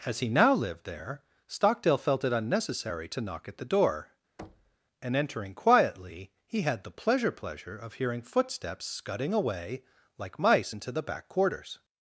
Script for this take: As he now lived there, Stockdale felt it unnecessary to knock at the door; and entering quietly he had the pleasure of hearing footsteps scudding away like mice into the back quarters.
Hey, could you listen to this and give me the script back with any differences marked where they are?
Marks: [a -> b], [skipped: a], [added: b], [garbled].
As he now lived there, Stockdale felt it unnecessary to knock at the door; and entering quietly he had the pleasure [added: pleasure] of hearing footsteps scudding away like mice into the back quarters.